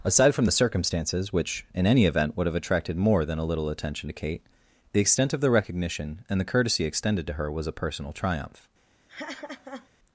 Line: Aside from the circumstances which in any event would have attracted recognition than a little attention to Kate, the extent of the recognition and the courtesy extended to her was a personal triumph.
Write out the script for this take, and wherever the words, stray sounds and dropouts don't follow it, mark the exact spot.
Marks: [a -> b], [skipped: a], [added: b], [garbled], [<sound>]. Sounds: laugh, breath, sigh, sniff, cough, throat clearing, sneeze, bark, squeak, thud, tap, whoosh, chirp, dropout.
Aside from the circumstances which in any event would have attracted [recognition -> more] than a little attention to Kate, the extent of the recognition and the courtesy extended to her was a personal triumph. [laugh]